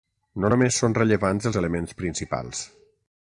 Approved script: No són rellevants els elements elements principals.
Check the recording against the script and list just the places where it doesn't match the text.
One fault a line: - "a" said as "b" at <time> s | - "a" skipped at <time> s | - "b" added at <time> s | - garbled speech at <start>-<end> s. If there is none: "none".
- "només" added at 0.5 s
- "elements" skipped at 2.0 s